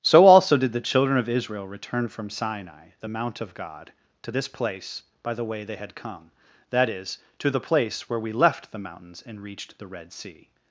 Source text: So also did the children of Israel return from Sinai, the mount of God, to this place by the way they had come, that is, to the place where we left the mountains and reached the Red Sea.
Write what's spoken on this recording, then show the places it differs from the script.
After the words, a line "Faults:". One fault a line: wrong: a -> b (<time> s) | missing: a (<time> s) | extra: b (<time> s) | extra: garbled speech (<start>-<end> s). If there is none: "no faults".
So also did the children of Israel return from Sinai, the mount of God, to this place by the way they had come, that is, to the place where we left the mountains and reached the Red Sea.
Faults:
no faults